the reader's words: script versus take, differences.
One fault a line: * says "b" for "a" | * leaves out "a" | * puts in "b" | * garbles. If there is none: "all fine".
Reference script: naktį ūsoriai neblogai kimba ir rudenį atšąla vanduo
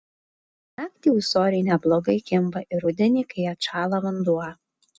* puts in "kai"